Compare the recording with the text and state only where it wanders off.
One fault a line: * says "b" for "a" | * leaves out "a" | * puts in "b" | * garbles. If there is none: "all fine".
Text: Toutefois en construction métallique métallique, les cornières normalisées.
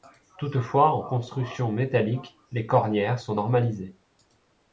* leaves out "métallique"
* puts in "sont"